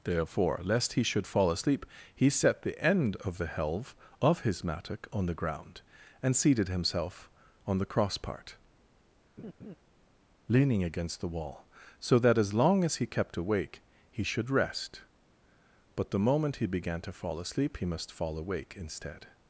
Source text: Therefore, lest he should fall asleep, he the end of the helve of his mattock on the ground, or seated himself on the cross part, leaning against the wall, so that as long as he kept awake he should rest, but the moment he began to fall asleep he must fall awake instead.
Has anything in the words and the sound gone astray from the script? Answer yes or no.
yes